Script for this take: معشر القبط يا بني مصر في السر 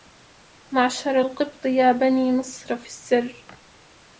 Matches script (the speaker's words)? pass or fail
pass